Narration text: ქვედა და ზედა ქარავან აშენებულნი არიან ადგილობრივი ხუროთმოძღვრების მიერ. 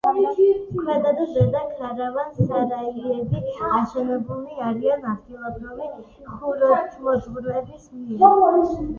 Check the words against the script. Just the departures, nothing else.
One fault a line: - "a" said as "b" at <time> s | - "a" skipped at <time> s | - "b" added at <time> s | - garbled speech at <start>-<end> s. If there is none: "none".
- "სარაიები" added at 2.4 s